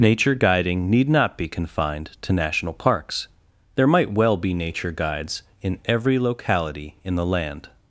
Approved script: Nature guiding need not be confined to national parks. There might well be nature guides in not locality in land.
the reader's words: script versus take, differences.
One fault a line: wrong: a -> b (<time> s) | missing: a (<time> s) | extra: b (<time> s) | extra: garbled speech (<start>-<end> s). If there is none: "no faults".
wrong: not -> every (5.8 s)
extra: the (7.1 s)